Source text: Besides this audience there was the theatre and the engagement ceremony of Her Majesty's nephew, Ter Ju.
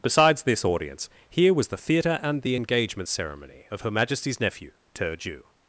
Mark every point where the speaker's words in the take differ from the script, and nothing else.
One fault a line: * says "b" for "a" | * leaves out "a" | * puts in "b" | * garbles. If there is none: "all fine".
* says "here" for "there"